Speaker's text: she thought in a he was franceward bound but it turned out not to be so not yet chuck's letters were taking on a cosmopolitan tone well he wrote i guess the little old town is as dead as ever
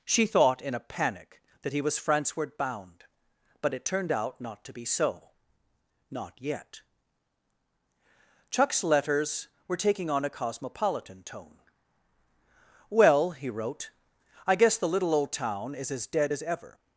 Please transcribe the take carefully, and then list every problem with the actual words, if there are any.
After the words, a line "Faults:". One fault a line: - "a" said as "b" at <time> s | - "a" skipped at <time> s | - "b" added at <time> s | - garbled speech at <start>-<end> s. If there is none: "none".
she thought in a panic that he was franceward bound but it turned out not to be so not yet chuck's letters were taking on a cosmopolitan tone well he wrote i guess the little old town is as dead as ever
Faults:
- "panic that" added at 0.8 s